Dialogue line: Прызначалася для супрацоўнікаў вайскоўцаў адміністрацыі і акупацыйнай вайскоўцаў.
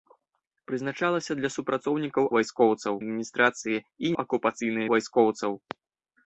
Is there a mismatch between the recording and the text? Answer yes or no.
no